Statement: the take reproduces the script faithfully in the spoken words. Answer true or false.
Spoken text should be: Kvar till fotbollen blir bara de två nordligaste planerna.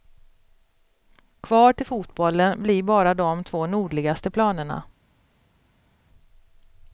true